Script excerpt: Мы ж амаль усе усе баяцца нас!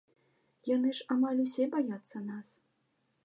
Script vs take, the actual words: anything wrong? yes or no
yes